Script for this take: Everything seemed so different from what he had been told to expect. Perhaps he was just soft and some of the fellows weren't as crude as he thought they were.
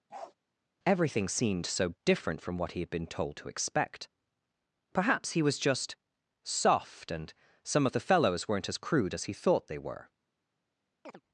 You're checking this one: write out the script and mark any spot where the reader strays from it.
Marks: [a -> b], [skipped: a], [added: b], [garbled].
Everything seemed so different from what he had been told to expect. Perhaps he was just soft and some of the fellows weren't as crude as he thought they were.